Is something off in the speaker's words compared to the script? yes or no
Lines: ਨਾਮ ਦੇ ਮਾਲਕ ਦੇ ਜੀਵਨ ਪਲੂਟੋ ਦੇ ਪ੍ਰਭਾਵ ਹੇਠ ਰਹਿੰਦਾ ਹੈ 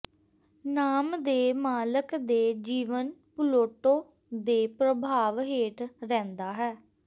no